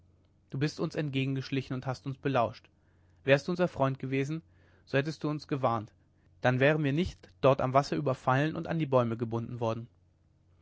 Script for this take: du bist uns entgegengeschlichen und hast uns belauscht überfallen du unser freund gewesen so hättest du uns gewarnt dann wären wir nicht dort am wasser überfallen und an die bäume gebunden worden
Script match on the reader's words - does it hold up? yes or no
no